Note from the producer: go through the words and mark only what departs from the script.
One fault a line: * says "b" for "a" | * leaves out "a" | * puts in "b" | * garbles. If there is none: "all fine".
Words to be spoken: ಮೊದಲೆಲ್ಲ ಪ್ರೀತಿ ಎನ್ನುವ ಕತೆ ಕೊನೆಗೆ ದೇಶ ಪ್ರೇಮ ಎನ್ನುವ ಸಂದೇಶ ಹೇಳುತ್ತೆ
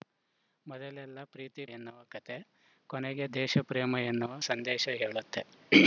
all fine